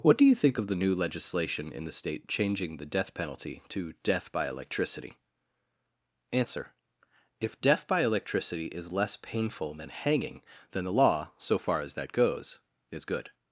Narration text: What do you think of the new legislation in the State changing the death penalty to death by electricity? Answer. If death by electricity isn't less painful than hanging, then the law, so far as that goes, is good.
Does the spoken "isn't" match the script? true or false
false